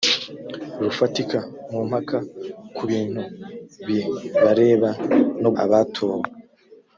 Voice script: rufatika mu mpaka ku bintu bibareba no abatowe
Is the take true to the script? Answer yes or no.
yes